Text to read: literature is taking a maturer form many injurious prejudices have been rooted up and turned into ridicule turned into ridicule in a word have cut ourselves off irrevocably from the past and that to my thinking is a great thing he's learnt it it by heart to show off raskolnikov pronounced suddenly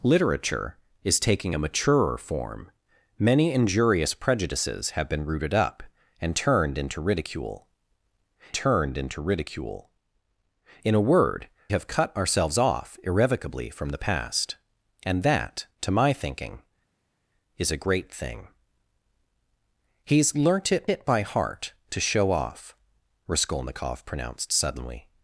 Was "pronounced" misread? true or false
false